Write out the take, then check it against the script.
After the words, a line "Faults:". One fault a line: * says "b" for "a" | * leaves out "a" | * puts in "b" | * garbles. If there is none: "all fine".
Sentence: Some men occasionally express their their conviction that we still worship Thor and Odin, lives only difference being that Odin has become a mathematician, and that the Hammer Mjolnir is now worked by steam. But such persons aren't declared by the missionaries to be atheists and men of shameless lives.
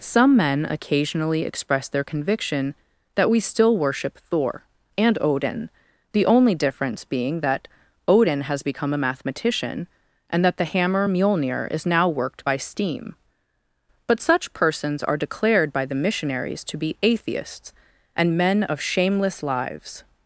Some men occasionally express their conviction that we still worship Thor and Odin, the only difference being that Odin has become a mathematician, and that the Hammer Mjolnir is now worked by steam. But such persons are declared by the missionaries to be atheists and men of shameless lives.
Faults:
* leaves out "their"
* says "the" for "lives"
* says "are" for "aren't"